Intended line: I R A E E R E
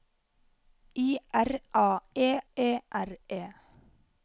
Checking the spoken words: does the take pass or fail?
pass